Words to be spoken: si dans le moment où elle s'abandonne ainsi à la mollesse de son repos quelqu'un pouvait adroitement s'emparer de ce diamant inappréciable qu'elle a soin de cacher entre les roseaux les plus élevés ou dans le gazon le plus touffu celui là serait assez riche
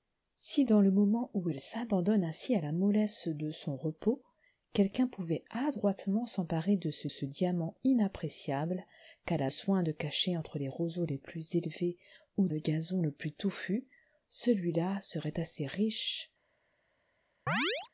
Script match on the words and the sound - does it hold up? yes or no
no